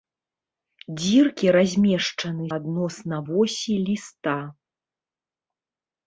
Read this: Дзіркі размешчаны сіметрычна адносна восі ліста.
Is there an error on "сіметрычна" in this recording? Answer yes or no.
yes